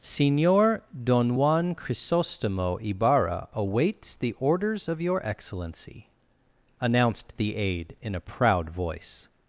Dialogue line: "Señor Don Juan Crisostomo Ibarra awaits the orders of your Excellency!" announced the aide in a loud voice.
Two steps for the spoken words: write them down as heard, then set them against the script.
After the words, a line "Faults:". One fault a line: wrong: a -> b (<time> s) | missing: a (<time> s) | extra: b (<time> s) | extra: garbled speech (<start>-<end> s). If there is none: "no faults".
"Señor Don Juan Crisostomo Ibarra awaits the orders of your Excellency!" announced the aide in a proud voice.
Faults:
wrong: loud -> proud (8.2 s)